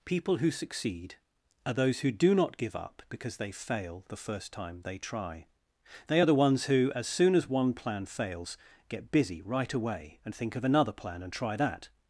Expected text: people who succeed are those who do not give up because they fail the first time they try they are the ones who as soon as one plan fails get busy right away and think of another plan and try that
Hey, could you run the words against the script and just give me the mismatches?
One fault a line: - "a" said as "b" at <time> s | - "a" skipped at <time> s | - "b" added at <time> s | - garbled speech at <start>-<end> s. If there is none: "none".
none